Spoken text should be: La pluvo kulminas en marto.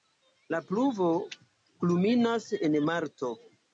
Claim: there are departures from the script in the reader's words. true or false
false